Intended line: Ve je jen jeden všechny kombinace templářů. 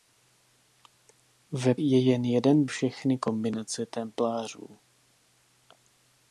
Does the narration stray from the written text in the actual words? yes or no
no